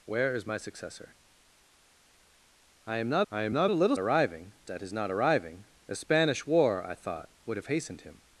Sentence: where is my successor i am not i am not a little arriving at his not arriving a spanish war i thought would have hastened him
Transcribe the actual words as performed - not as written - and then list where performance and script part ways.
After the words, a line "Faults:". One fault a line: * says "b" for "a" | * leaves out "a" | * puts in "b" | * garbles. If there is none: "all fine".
where is my successor i am not i am not a little arriving at his not arriving a spanish war i thought would have hastened him
Faults:
all fine